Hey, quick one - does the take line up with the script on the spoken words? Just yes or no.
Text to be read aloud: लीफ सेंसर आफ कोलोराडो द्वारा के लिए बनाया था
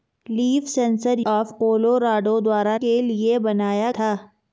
yes